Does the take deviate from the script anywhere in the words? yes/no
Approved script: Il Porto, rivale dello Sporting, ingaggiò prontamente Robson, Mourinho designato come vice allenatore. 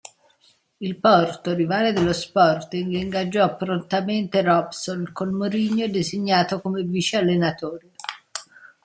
yes